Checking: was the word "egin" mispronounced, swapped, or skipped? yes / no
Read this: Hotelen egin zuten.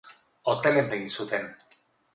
no